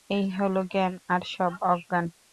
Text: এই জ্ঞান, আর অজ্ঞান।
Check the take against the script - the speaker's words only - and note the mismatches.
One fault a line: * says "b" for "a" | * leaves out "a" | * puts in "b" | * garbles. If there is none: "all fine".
* puts in "হল"
* puts in "সব"